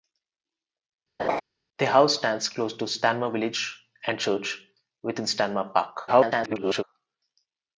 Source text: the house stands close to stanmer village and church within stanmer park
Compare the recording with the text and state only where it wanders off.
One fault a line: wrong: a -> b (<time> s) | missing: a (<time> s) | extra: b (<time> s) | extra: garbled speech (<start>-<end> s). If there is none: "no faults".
extra: garbled speech (6.1-6.8 s)